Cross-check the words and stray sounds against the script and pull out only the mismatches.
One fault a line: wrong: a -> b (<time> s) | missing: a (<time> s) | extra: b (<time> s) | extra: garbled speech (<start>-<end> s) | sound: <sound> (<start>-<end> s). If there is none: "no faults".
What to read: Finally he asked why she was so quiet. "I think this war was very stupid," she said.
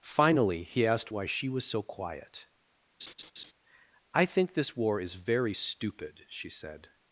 sound: laugh (3.0-3.5 s)
wrong: was -> is (5.0 s)